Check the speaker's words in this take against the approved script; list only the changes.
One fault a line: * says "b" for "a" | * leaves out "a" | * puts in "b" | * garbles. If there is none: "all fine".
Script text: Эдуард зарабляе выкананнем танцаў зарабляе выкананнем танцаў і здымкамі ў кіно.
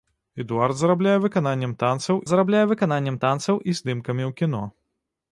all fine